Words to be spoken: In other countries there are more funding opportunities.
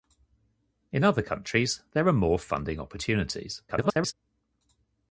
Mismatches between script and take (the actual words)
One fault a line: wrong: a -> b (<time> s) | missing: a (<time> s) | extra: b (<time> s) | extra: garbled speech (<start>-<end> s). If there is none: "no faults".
extra: garbled speech (3.7-4.1 s)